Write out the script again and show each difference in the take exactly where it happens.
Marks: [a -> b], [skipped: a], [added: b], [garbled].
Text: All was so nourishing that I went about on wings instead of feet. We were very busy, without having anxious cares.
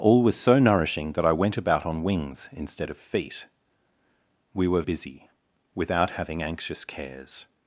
All was so nourishing that I went about on wings instead of feet. We were [skipped: very] busy, without having anxious cares.